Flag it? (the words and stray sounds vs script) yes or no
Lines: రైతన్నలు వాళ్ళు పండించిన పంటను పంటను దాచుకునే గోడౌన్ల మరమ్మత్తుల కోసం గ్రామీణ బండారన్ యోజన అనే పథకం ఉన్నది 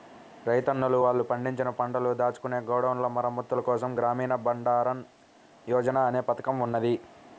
yes